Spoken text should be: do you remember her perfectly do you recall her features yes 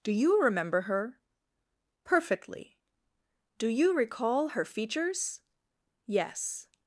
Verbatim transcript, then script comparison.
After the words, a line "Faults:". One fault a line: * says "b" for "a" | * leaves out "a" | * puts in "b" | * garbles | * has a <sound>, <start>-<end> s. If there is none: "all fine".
do you remember her perfectly do you recall her features yes
Faults:
all fine